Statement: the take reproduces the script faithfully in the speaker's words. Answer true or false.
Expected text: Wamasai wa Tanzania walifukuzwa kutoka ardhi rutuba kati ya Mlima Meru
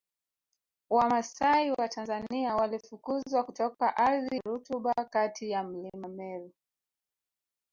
true